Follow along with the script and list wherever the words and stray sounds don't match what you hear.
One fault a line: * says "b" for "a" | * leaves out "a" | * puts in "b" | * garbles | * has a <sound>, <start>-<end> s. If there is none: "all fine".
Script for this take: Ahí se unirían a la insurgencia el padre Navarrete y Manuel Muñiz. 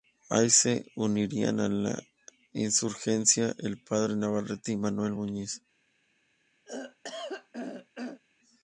* has a throat clearing, 6.7-8.2 s